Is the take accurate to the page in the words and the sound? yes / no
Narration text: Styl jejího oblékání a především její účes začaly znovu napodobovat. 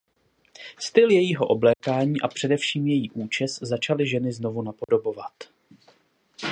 no